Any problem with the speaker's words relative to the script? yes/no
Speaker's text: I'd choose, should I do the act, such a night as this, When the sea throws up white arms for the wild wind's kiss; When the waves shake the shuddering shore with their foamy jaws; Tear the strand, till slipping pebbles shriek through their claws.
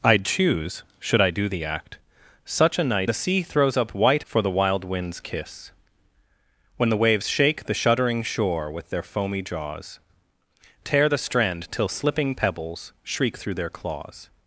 yes